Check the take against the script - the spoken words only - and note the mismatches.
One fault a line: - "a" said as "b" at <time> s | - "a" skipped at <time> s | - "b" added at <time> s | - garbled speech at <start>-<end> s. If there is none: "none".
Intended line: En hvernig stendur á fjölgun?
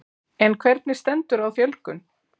none